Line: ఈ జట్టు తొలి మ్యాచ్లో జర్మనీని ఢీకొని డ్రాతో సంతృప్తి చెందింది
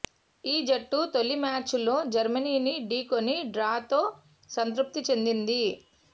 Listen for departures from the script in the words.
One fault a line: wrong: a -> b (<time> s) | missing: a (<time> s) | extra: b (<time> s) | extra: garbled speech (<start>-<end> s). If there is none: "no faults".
no faults